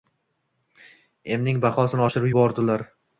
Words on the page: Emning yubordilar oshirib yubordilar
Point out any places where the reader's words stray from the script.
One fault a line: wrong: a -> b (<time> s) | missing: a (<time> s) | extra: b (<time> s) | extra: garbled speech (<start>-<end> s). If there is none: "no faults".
wrong: yubordilar -> bahosini (1.7 s)